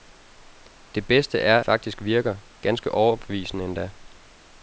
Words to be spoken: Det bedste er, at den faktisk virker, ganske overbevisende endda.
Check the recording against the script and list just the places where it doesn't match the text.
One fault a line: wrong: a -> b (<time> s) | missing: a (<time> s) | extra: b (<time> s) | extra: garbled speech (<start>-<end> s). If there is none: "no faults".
missing: at den (1.6 s)